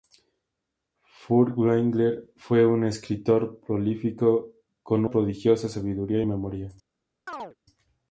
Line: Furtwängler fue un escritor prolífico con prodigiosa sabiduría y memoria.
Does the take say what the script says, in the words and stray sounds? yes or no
no